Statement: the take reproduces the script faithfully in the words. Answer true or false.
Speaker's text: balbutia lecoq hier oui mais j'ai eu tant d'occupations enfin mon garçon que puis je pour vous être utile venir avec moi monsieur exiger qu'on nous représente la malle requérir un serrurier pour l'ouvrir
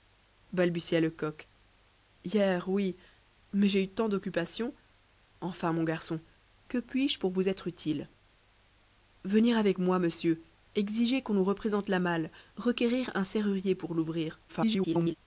false